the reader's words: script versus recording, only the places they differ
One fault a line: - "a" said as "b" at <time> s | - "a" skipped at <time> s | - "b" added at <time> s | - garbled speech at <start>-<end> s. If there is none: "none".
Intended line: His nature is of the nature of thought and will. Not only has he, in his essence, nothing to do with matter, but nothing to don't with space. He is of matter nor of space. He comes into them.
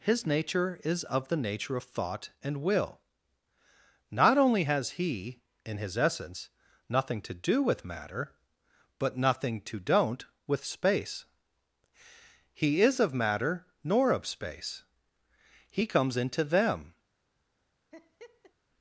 none